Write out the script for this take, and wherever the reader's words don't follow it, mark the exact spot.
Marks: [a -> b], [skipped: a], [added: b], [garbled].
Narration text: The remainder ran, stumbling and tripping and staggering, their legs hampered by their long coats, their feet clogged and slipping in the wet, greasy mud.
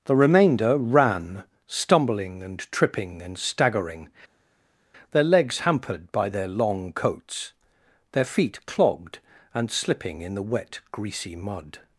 The remainder ran, stumbling and tripping and staggering, their legs hampered by their long coats, their feet clogged and slipping in the wet, greasy mud.